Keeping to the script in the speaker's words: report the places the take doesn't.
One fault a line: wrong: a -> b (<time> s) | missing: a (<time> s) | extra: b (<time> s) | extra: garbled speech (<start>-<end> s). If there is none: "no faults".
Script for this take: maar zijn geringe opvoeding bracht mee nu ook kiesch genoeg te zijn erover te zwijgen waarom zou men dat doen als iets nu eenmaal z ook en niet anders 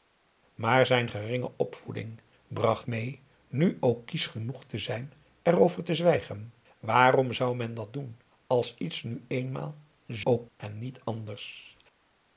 no faults